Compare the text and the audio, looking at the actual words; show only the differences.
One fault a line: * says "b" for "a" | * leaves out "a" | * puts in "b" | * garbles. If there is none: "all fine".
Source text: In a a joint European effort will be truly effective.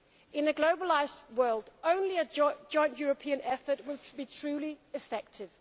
* puts in "globalised world only"